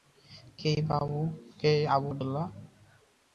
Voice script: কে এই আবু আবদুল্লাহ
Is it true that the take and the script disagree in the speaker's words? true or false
false